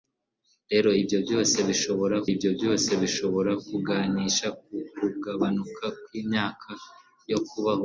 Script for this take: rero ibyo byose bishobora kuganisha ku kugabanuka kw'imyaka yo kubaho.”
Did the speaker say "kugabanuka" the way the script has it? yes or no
yes